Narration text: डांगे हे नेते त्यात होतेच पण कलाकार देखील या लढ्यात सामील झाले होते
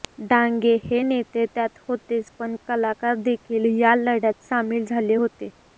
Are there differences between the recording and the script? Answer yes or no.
no